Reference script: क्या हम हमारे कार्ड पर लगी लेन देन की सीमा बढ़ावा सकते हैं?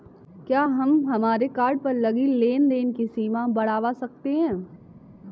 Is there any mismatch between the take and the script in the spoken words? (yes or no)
no